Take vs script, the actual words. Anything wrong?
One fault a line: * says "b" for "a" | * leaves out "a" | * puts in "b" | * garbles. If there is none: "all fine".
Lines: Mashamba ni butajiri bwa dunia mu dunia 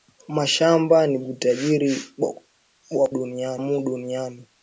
all fine